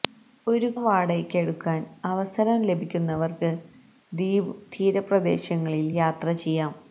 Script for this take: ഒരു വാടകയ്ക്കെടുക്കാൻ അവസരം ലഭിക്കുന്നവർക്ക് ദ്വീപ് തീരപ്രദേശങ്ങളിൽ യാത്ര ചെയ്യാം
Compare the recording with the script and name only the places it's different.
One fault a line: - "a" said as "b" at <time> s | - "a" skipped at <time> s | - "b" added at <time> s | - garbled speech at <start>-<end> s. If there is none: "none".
none